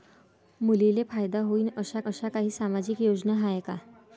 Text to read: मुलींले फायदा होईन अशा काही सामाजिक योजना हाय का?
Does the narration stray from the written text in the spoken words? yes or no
yes